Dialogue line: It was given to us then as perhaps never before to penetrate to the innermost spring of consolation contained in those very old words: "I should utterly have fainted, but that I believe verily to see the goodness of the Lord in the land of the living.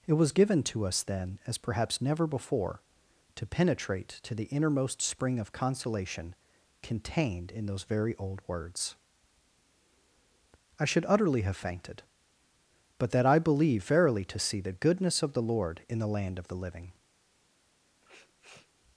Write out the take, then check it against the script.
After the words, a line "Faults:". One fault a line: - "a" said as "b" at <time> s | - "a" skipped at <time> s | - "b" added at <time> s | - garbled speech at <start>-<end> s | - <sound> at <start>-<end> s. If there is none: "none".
It was given to us then as perhaps never before to penetrate to the innermost spring of consolation contained in those very old words: "I should utterly have fainted, but that I believe verily to see the goodness of the Lord in the land of the living.
Faults:
- sniff at 18.0-18.7 s